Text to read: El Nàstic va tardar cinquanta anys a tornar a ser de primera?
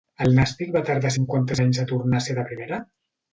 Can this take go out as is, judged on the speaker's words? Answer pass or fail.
pass